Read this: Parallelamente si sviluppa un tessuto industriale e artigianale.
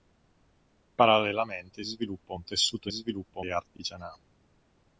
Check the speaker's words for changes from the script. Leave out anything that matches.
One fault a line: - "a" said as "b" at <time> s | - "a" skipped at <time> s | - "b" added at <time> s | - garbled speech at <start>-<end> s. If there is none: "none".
- "si" skipped at 1.8 s
- "industriale" said as "sviluppa" at 2.9 s